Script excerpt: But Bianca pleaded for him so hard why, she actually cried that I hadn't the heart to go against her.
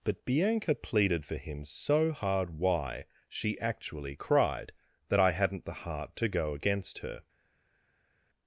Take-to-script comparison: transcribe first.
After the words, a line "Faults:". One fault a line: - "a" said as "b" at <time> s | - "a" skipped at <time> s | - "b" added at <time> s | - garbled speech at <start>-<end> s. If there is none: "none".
But Bianca pleaded for him so hard why, she actually cried that I hadn't the heart to go against her.
Faults:
none